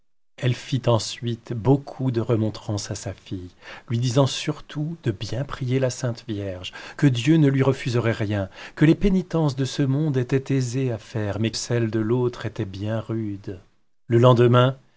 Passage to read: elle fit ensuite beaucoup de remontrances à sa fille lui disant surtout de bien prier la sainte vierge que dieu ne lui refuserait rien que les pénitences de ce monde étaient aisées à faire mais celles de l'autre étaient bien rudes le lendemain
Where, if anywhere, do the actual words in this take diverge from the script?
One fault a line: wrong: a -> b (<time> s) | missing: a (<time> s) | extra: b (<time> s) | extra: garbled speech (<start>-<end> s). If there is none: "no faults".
no faults